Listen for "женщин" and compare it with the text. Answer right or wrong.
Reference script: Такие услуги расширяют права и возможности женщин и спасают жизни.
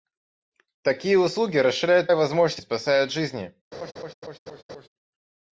wrong